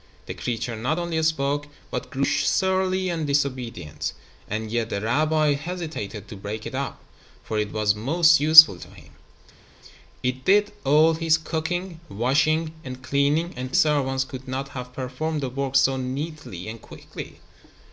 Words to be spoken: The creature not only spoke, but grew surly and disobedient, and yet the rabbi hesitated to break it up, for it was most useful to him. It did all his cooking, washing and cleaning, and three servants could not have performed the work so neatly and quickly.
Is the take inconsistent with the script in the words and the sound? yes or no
yes